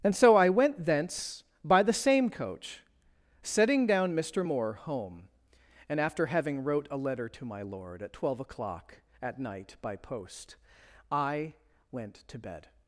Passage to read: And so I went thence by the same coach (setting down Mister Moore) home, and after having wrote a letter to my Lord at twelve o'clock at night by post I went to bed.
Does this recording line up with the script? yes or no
yes